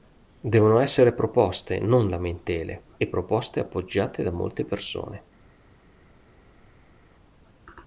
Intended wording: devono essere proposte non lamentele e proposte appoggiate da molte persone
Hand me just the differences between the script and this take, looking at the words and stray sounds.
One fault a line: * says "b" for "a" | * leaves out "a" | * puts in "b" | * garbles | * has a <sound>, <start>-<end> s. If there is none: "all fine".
all fine